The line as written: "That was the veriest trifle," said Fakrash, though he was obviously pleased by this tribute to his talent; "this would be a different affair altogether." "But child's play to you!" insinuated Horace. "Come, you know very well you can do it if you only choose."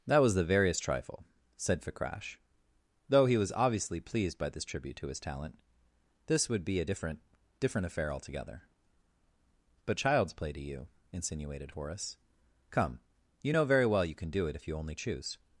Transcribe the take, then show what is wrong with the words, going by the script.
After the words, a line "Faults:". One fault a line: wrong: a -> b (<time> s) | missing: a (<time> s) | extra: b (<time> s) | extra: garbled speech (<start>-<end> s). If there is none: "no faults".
"That was the veriest trifle," said Fakrash, though he was obviously pleased by this tribute to his talent; "this would be a different different affair altogether." "But child's play to you!" insinuated Horace. "Come, you know very well you can do it if you only choose."
Faults:
extra: different (7.6 s)